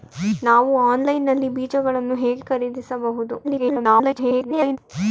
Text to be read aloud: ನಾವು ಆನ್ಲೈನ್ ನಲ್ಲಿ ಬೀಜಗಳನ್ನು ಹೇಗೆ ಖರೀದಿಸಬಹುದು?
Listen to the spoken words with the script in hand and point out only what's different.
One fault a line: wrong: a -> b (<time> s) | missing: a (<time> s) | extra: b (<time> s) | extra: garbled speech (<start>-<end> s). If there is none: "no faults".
extra: garbled speech (3.4-4.8 s)